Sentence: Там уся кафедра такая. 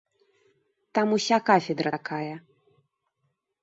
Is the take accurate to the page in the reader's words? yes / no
yes